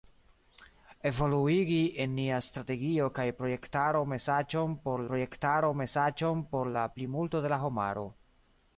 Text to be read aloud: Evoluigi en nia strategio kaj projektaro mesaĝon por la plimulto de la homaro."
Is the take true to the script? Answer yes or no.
no